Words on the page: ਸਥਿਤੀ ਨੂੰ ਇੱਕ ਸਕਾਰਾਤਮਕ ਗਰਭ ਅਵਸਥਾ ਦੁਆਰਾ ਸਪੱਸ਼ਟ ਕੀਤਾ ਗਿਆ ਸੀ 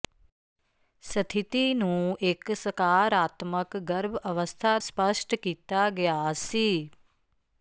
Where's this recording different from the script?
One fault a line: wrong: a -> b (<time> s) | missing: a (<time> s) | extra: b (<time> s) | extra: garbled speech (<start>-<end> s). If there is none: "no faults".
missing: ਦੁਆਰਾ (4.8 s)